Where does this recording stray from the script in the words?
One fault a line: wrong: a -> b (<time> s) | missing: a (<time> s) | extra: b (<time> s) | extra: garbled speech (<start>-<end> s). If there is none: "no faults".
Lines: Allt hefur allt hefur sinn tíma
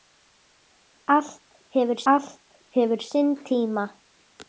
no faults